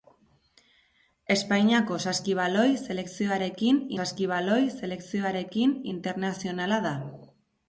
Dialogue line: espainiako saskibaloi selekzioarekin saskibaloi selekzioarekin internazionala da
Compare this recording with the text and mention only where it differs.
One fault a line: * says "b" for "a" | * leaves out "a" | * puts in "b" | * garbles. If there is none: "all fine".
all fine